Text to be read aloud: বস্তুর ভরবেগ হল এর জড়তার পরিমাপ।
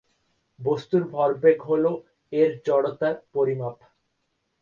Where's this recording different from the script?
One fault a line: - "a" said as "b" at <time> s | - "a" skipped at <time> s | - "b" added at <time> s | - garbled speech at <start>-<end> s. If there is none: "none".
none